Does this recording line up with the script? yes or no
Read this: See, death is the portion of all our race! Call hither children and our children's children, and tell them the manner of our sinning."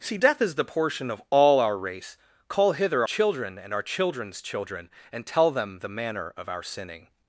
yes